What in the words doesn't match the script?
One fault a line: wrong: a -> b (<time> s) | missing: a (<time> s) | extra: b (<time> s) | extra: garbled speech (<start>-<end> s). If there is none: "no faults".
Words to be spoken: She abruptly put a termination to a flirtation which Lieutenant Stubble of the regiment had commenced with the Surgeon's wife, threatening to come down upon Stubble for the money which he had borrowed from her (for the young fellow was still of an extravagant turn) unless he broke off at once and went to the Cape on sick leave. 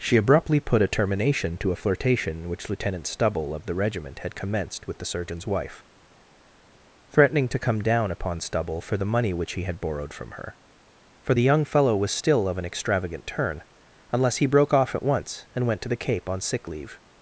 no faults